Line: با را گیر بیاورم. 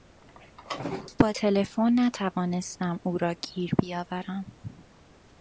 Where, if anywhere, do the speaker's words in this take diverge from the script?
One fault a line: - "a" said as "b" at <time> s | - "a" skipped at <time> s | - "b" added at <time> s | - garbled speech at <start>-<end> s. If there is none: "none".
- "تلفن نتوانستم او" added at 1.3 s